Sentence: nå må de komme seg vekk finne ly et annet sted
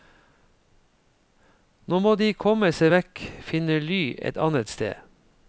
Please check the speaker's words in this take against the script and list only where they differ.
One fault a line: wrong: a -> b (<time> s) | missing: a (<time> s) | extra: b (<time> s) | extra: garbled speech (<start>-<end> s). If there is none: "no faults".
no faults